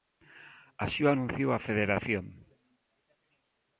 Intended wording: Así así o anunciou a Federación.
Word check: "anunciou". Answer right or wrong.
right